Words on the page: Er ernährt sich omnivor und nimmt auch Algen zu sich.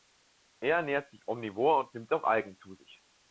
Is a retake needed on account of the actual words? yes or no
no